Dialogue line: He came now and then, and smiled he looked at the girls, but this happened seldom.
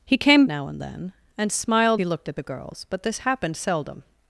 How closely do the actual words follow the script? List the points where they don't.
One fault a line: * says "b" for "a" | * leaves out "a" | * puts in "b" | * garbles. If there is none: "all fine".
all fine